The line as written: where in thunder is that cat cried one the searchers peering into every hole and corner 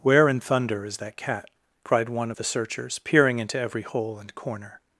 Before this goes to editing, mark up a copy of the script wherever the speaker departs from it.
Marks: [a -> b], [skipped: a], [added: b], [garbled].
where in thunder is that cat cried one the searchers peering into every hole and corner